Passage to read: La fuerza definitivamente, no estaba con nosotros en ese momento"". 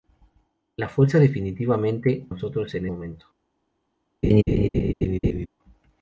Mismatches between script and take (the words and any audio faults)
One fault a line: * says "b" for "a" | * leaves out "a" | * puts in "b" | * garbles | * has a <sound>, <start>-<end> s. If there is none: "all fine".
* leaves out "no estaba con"
* leaves out "ese"
* has a laugh, 4.2-5.5 s